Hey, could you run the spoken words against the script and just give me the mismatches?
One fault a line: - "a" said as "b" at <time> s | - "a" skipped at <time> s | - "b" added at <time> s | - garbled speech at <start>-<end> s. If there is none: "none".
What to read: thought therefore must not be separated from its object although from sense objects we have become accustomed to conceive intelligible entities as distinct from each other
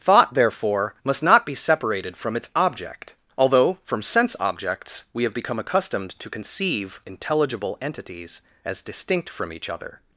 none